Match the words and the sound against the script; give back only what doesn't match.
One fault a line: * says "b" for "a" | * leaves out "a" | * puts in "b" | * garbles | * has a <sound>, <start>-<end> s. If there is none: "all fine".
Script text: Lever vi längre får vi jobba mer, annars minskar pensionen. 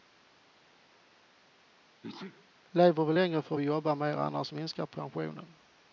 * has a sneeze, 2.0-2.5 s